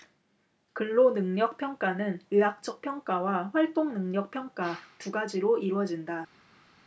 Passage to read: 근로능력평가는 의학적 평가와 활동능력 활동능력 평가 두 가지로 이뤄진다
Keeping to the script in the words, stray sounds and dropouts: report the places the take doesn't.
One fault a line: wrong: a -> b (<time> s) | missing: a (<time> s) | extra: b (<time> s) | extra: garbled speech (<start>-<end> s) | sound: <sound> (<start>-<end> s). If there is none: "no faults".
missing: 활동능력 (4.3 s)